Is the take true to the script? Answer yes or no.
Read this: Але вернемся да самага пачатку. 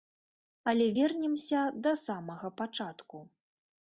yes